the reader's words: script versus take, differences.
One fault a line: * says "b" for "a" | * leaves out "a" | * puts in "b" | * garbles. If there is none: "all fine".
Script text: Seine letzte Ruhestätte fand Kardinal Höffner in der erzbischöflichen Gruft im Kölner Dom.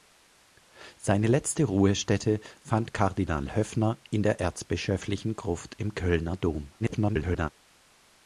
* garbles